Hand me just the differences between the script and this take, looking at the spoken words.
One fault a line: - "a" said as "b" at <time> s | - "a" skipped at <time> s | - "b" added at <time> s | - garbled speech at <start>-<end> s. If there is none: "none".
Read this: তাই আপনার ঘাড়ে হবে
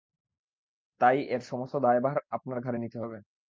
- "এর সমস্ত দায়ভার" added at 1.3 s
- "নিতে" added at 2.8 s